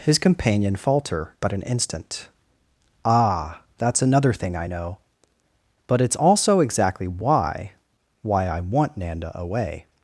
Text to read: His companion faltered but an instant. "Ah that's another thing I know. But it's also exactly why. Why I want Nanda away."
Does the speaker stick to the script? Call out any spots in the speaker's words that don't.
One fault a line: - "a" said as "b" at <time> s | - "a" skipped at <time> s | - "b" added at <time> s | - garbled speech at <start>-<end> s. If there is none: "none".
- "faltered" said as "falter" at 0.8 s